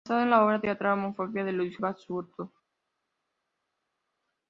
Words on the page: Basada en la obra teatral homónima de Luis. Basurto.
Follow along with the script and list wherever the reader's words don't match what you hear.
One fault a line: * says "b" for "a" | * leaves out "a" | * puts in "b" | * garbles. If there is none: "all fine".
all fine